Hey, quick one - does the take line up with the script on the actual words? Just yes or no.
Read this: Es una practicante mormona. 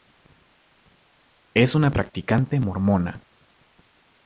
yes